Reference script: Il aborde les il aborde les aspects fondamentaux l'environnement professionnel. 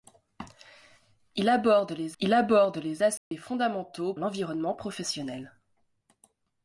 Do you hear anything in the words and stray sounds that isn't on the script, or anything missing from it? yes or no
yes